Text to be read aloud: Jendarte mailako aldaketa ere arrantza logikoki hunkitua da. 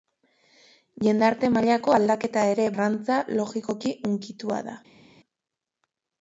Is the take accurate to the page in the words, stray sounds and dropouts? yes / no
yes